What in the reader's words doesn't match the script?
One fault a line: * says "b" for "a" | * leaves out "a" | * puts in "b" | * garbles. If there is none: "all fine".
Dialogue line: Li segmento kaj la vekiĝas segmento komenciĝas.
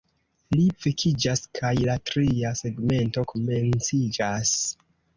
* says "vekiĝas" for "segmento"
* says "tria" for "vekiĝas"